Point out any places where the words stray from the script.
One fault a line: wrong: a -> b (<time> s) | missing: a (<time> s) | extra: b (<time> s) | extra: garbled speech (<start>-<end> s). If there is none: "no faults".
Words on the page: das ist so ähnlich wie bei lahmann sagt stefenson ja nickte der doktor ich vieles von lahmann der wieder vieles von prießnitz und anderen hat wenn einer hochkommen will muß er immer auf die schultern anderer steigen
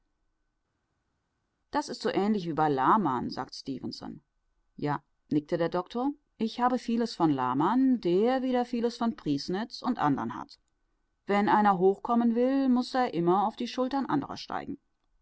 extra: habe (6.6 s)